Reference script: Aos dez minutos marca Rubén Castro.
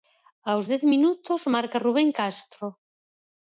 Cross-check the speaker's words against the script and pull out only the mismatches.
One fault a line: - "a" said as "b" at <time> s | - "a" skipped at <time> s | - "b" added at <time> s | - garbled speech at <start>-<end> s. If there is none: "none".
none